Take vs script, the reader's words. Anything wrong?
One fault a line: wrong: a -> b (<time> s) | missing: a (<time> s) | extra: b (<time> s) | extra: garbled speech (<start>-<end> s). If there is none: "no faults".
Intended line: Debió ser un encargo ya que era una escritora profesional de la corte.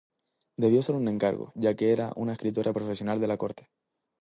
no faults